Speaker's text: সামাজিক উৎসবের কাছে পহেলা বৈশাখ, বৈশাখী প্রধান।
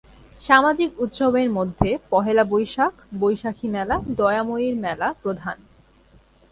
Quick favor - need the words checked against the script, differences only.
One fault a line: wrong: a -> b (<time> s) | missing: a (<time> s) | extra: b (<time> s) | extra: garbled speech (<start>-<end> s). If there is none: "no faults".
wrong: কাছে -> মধ্যে (1.5 s)
extra: মেলা দয়াময়ীর মেলা (3.7 s)